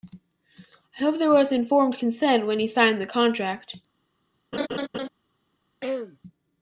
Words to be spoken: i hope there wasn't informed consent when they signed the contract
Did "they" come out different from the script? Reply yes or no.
yes